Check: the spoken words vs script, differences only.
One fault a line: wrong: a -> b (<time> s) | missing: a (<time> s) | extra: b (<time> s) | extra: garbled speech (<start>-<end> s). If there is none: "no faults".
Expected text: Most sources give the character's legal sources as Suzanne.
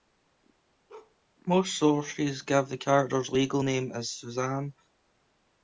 wrong: sources -> name (3.6 s)